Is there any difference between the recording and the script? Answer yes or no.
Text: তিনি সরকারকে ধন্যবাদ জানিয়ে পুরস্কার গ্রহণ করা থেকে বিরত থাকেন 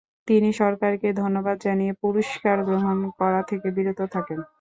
no